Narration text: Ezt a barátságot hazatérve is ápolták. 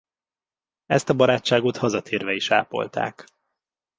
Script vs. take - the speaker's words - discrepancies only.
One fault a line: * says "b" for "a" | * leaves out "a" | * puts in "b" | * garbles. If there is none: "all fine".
all fine